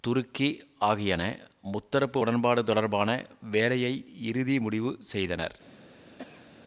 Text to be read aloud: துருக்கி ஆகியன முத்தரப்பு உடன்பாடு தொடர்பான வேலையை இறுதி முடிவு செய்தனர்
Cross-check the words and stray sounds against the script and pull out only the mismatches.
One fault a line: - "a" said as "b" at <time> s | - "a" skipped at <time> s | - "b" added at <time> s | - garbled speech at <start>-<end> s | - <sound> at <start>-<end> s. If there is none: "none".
- cough at 6.2-6.5 s